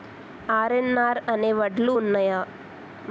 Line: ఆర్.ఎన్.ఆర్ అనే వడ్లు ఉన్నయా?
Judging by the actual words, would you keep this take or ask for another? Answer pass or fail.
pass